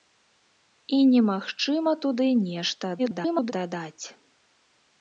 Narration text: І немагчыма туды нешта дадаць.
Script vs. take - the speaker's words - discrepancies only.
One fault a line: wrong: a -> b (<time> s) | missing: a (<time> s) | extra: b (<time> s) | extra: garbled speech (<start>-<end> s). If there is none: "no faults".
extra: garbled speech (3.0-3.5 s)